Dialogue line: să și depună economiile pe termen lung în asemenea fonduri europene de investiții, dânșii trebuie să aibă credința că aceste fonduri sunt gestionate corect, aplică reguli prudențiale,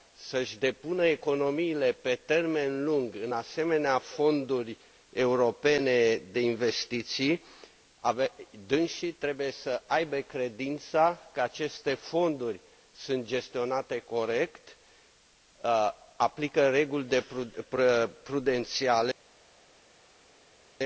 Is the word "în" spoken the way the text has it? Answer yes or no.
yes